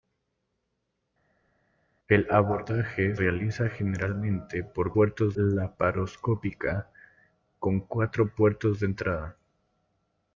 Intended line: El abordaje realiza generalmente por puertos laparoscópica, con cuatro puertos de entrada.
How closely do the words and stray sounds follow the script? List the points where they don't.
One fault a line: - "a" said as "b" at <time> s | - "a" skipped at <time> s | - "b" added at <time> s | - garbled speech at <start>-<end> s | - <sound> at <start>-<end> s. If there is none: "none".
none